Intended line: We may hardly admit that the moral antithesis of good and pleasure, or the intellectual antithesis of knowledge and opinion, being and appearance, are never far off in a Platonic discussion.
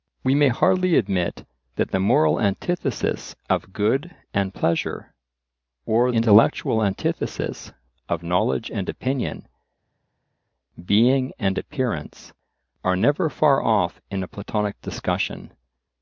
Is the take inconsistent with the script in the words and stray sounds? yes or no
yes